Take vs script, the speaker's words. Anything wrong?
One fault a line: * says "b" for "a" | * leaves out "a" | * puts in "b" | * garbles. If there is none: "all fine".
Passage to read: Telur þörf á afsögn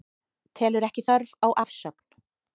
* puts in "ekki"